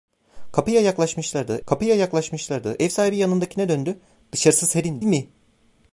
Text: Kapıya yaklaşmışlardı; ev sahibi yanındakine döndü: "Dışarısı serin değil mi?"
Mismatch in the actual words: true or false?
true